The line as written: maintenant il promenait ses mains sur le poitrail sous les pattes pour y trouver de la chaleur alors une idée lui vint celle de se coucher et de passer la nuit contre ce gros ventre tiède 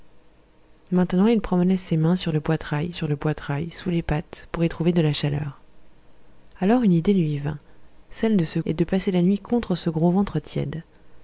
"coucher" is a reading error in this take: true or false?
true